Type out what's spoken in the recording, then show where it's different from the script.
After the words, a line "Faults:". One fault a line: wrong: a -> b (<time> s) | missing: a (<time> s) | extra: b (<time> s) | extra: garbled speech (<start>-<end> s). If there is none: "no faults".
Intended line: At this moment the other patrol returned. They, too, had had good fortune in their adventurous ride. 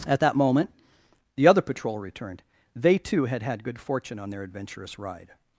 At that moment the other patrol returned. They, too, had had good fortune on their adventurous ride.
Faults:
wrong: this -> that (0.2 s)
wrong: in -> on (4.2 s)